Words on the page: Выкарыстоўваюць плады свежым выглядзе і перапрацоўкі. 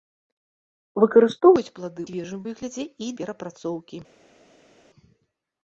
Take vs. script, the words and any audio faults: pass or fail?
pass